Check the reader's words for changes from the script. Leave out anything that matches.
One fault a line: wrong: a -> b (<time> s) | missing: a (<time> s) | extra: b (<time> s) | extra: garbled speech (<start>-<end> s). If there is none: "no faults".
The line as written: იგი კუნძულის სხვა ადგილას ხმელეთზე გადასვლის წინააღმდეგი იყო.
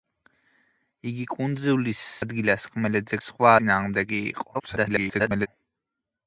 missing: სხვა (2.0 s)
wrong: გადასვლის -> სხვა (3.3 s)
extra: garbled speech (4.5-5.5 s)